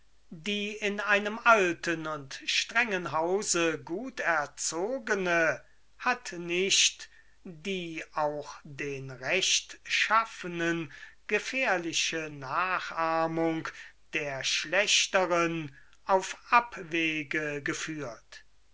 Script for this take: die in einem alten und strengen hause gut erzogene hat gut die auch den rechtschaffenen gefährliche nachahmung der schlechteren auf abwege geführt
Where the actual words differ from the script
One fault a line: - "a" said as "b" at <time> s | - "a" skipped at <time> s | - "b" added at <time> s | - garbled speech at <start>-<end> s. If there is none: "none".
- "gut" said as "nicht" at 6.3 s